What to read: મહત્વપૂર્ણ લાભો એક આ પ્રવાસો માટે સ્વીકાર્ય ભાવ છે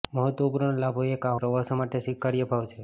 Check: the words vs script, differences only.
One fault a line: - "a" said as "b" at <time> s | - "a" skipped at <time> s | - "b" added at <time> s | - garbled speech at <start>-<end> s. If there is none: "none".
none